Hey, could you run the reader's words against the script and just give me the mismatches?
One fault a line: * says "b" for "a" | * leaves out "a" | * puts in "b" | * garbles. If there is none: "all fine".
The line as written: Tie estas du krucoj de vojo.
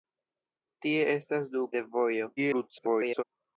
* leaves out "krucoj"
* garbles